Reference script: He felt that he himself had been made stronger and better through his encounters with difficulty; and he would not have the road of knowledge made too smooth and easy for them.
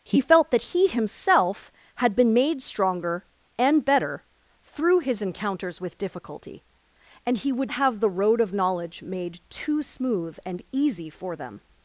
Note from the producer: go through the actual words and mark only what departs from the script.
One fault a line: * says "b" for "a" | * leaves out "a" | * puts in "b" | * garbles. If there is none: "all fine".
* leaves out "not"